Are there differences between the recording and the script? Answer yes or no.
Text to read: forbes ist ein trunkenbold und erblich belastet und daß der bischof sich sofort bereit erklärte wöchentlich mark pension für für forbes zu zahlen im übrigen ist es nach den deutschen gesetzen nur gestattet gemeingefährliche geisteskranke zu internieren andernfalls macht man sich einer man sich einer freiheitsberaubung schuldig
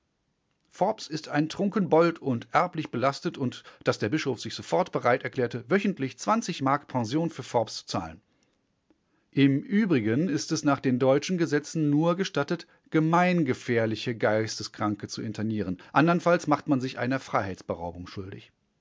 yes